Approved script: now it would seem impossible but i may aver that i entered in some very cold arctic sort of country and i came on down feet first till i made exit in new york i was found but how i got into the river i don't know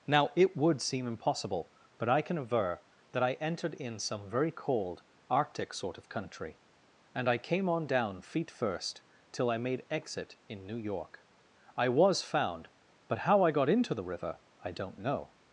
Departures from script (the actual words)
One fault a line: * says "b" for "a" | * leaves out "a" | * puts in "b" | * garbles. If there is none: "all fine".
* says "can" for "may"